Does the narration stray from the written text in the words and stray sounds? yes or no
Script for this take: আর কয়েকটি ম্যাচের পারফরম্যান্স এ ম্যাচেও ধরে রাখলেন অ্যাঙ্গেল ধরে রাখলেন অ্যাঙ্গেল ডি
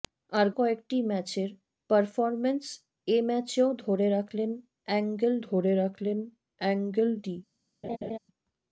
yes